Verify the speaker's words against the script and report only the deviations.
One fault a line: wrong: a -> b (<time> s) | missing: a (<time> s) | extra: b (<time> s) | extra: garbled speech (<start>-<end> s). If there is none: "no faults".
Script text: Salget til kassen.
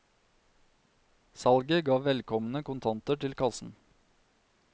extra: ga velkomne kontanter (1.9 s)